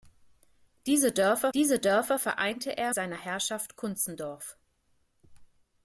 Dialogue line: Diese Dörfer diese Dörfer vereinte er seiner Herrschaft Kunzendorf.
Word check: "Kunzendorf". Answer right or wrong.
right